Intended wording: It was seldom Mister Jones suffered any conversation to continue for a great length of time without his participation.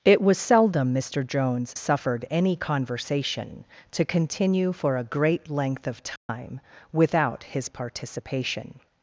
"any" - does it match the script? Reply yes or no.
yes